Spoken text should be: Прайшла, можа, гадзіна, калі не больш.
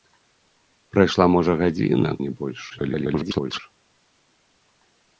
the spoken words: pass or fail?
fail